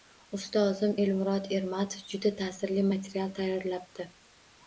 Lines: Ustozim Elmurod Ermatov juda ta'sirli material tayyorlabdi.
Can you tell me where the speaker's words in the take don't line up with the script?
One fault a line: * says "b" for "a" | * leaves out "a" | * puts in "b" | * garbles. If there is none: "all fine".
all fine